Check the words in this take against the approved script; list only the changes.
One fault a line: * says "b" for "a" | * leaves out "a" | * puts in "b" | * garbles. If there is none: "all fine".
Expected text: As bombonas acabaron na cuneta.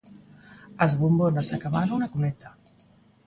all fine